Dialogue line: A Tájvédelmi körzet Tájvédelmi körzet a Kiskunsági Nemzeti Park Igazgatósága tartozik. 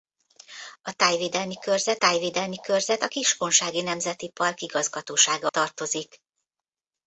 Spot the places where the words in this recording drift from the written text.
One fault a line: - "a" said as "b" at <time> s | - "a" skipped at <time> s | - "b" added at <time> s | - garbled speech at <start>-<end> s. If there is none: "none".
none